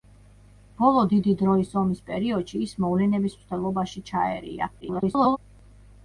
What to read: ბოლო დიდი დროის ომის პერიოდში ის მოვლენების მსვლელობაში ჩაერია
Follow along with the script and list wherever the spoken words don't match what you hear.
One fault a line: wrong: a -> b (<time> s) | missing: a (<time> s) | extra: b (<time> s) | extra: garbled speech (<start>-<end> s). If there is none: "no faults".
extra: garbled speech (4.8-5.4 s)